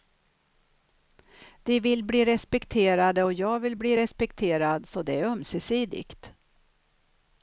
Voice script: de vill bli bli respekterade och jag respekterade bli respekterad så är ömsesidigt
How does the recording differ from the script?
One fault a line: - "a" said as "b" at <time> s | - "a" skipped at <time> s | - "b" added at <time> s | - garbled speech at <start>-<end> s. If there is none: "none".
- "bli" skipped at 2.2 s
- "respekterade" said as "vill" at 3.6 s
- "det" added at 5.0 s